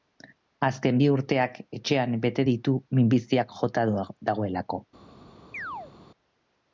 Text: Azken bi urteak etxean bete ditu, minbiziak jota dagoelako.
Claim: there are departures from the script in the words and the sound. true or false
true